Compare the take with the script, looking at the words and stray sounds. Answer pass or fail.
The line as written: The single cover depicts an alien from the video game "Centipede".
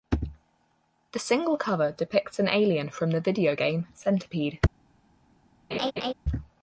fail